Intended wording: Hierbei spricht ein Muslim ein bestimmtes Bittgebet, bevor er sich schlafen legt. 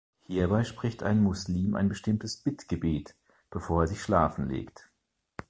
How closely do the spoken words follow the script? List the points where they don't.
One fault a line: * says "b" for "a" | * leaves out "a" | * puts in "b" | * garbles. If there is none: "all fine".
all fine